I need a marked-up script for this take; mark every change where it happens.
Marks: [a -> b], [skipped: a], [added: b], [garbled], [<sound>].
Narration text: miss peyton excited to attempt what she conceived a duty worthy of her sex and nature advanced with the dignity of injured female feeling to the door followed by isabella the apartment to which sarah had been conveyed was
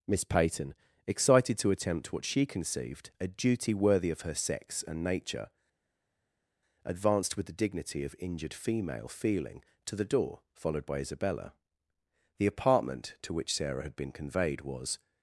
miss peyton excited to attempt what she conceived a duty worthy of her sex and nature advanced with the dignity of injured female feeling to the door followed by isabella the apartment to which sarah had been conveyed was